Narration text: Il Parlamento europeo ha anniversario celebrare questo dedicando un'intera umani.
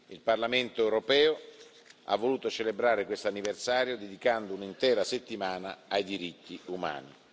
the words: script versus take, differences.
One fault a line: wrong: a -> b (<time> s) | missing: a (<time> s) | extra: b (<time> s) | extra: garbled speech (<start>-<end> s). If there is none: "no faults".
wrong: anniversario -> voluto (2.2 s)
extra: anniversario (3.3 s)
extra: settimana ai diritti (5.0 s)